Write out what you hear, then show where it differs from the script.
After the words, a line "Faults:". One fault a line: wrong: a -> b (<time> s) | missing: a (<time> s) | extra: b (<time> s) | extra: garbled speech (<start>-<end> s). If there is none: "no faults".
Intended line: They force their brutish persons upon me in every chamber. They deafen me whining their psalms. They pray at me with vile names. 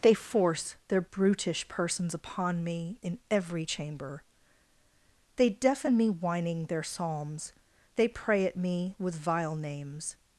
They force their brutish persons upon me in every chamber. They deafen me whining their psalms. They pray at me with vile names.
Faults:
no faults